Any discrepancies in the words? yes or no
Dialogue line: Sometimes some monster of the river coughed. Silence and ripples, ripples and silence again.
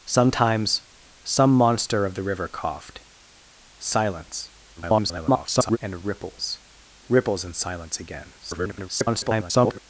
yes